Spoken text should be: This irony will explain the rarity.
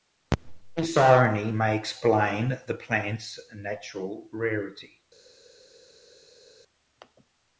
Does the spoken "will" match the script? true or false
false